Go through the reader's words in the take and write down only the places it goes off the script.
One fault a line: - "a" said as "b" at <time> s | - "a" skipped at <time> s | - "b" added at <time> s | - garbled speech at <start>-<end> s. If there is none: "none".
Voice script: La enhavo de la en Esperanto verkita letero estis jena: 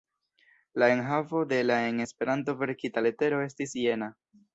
none